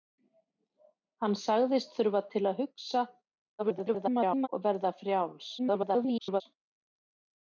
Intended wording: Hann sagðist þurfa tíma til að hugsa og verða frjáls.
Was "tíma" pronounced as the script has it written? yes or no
no